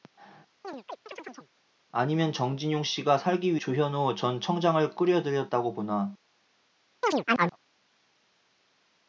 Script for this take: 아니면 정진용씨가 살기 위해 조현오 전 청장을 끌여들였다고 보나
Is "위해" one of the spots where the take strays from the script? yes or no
yes